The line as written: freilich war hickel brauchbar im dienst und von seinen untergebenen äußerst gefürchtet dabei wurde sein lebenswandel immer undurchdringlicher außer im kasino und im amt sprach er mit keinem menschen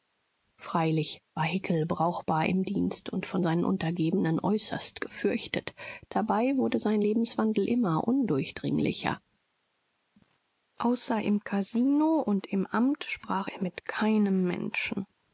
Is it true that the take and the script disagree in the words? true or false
false